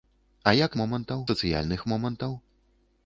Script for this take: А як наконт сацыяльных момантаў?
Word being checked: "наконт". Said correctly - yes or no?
no